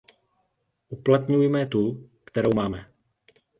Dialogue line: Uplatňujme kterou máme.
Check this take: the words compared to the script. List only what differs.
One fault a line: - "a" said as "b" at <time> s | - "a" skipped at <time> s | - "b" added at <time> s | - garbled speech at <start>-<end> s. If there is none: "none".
- "tu" added at 1.6 s